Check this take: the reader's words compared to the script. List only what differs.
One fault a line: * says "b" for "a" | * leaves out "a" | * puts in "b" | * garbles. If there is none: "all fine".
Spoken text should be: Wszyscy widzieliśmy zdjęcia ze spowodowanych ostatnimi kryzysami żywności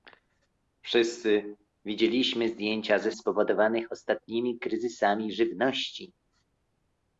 all fine